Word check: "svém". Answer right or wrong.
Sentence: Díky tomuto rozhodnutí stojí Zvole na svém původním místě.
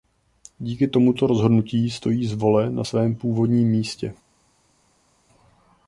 right